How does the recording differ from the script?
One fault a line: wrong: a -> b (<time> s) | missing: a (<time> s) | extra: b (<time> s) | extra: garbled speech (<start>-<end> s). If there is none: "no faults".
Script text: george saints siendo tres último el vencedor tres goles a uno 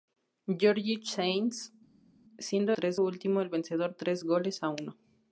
no faults